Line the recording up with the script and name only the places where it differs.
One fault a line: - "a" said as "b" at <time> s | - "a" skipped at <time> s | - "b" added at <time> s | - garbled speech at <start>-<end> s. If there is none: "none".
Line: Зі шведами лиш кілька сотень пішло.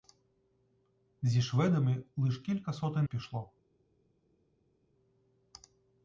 none